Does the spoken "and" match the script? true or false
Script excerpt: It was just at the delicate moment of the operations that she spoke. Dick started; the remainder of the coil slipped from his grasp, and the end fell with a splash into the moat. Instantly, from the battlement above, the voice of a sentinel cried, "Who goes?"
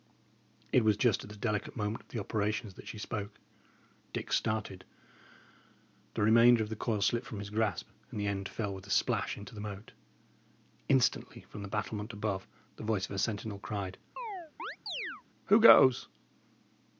true